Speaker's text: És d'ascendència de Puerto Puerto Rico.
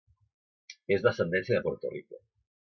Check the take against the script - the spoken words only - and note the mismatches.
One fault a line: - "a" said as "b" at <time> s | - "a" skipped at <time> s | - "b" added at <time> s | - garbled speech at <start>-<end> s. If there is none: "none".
- "Puerto" skipped at 1.9 s